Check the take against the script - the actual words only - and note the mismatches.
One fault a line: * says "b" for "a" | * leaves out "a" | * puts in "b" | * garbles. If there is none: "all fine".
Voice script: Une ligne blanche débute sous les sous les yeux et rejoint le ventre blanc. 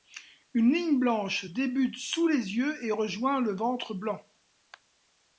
* leaves out "sous les"